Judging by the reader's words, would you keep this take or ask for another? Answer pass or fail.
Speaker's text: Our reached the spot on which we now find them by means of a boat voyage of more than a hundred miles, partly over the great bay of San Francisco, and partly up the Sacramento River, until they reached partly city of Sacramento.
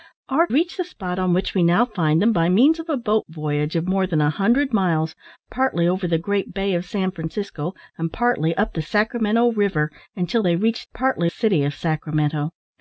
pass